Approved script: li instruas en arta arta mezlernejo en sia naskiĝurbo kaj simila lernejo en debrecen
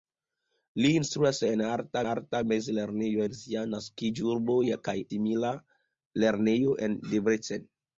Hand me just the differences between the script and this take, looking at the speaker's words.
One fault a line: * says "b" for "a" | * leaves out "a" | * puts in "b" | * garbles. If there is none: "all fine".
all fine